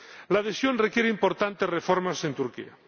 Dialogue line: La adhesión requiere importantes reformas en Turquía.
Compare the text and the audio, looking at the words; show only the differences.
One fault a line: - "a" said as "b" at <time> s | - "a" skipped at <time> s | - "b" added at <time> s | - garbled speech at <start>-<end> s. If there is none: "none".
none